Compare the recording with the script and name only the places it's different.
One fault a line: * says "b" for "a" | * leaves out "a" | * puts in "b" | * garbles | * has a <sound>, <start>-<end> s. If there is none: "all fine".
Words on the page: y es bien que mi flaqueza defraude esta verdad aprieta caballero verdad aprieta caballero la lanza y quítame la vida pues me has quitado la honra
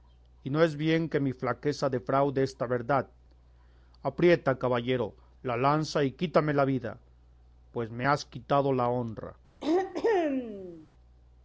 * puts in "no"
* leaves out "verdad aprieta caballero"
* has a throat clearing, 9.6-10.9 s